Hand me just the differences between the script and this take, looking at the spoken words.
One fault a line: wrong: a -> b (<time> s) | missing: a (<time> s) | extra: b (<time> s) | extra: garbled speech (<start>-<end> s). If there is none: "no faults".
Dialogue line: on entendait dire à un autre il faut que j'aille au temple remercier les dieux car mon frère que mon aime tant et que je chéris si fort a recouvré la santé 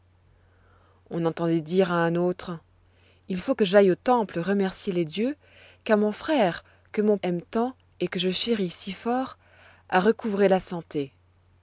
no faults